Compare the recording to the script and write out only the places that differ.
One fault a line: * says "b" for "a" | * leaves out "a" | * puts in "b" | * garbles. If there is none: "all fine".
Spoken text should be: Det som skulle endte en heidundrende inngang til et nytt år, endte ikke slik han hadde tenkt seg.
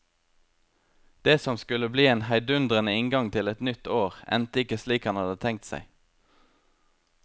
* says "bli" for "endte"